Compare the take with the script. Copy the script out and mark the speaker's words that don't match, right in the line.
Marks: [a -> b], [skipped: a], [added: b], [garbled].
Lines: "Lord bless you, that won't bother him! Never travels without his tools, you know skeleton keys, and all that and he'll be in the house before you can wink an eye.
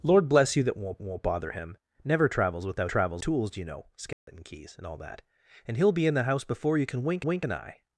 "Lord bless you, that won't [added: won't] bother him! Never travels without [his -> travels] tools, you know skeleton keys, and all that and he'll be in the house before you can wink [added: wink] an eye.